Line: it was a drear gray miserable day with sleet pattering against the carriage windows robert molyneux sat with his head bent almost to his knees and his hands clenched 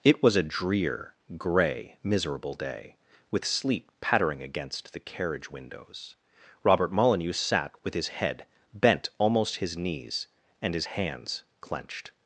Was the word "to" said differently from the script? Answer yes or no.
yes